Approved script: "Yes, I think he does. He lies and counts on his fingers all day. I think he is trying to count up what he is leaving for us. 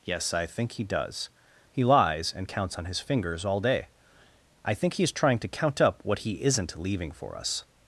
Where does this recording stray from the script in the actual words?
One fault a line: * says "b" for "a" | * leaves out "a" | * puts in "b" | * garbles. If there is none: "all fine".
* says "isn't" for "is"